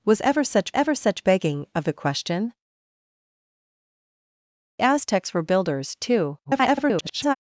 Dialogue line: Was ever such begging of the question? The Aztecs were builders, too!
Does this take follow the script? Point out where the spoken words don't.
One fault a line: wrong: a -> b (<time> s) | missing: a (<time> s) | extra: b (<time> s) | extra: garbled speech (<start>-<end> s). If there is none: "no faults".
extra: ever such (0.7 s)
missing: The (2.5 s)
extra: garbled speech (6.4-7.3 s)